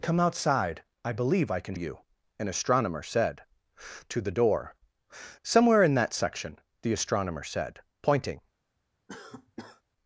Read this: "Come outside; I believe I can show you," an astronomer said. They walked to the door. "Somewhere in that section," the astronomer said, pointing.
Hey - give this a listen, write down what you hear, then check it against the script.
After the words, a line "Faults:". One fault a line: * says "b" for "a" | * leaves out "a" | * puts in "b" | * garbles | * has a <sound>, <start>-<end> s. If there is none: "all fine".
"Come outside; I believe I can you," an astronomer said. To the door. "Somewhere in that section," the astronomer said, pointing.
Faults:
* leaves out "show"
* leaves out "They walked"
* has a cough, 9.1-9.8 s